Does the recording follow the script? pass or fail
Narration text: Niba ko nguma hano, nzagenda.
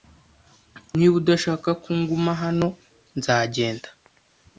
fail